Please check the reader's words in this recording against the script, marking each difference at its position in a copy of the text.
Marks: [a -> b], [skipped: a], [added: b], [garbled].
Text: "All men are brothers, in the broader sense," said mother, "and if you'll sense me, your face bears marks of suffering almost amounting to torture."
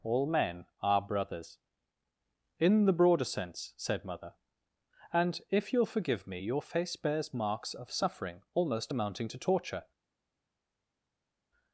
"All men are brothers, in the broader sense," said mother, "and if you'll [sense -> forgive] me, your face bears marks of suffering almost amounting to torture."